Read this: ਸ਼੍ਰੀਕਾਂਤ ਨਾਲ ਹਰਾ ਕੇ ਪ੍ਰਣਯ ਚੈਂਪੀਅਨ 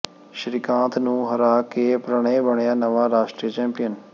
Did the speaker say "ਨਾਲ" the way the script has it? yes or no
no